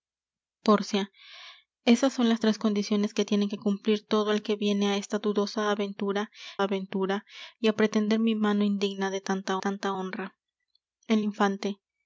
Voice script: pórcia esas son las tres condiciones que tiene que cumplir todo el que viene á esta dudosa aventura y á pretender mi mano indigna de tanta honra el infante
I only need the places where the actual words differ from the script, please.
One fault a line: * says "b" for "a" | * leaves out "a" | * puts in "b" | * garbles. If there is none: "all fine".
* puts in "aventura"
* puts in "tanta"